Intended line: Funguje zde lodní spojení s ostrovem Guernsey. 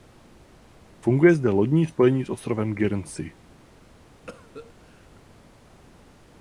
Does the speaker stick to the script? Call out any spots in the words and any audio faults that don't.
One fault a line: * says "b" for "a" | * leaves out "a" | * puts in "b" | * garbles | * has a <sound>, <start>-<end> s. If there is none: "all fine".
* has a cough, 4.3-5.2 s